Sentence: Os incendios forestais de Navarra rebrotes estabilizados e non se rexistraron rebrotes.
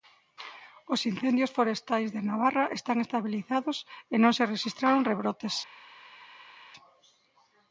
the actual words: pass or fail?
fail